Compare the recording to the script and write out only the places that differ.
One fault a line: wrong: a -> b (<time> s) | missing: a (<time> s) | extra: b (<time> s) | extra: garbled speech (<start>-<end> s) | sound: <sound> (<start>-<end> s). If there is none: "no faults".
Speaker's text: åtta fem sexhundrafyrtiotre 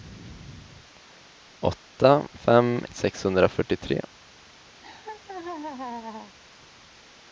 sound: laugh (4.8-6.4 s)